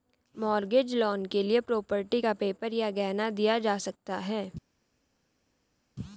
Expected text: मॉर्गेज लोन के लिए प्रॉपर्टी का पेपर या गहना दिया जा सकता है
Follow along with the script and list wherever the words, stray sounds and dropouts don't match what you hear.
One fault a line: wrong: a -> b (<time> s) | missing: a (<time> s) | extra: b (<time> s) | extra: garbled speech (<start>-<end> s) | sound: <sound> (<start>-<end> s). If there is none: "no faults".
no faults